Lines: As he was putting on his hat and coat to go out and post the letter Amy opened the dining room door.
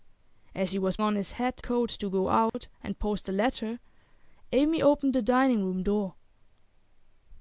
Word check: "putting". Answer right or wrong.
wrong